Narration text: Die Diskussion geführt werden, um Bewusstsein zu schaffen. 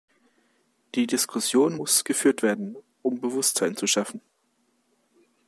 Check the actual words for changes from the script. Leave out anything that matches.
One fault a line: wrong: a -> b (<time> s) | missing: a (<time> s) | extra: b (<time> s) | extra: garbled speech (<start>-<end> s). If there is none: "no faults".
extra: muss (1.8 s)